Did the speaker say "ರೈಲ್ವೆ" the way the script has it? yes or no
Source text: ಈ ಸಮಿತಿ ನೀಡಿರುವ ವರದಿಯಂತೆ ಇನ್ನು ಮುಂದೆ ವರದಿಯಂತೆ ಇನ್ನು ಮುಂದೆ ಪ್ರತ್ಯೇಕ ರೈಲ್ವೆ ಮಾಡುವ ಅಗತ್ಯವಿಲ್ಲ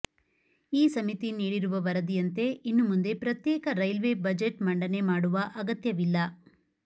no